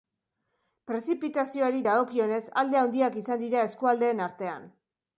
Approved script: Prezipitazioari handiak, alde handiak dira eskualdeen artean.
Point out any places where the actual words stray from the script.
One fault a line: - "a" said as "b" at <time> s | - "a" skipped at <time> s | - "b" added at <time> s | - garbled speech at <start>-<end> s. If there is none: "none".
- "handiak" said as "dagokionez" at 1.9 s
- "izan" added at 3.3 s